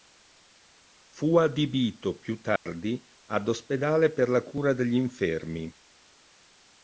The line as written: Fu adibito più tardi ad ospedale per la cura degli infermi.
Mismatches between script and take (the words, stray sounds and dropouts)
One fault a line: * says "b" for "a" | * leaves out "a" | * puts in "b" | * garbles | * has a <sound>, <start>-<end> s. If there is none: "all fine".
* has a dropout, 2.6-2.7 s